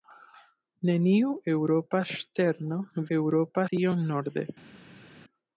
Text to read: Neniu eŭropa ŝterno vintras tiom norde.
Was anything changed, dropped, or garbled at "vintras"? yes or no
yes